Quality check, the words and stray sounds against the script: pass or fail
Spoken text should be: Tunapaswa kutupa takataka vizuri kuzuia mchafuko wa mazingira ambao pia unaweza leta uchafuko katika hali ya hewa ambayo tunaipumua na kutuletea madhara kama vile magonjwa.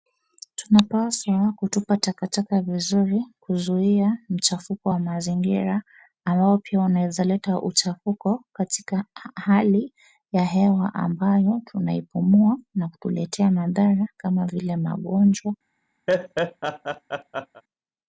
fail